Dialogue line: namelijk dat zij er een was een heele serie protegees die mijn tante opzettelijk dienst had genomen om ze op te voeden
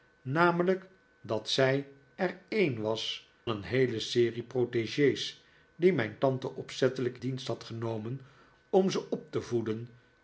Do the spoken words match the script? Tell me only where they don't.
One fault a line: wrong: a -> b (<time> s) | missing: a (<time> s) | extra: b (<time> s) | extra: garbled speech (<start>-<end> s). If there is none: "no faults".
no faults